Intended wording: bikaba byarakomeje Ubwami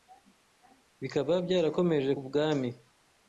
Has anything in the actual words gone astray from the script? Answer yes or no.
no